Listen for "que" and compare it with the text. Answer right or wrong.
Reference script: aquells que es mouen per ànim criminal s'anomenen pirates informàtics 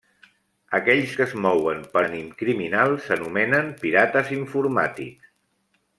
right